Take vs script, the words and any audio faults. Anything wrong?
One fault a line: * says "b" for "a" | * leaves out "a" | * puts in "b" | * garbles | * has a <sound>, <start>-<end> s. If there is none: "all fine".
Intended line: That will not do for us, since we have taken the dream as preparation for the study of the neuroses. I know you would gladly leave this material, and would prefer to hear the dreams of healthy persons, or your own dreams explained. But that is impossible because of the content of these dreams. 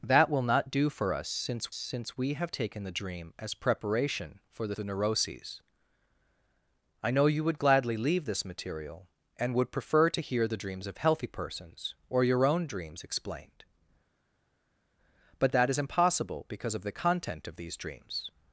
* puts in "since"
* leaves out "study of"